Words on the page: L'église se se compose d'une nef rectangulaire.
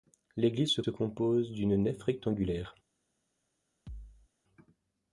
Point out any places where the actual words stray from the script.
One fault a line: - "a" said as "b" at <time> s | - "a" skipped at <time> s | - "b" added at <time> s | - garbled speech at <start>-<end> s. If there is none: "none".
none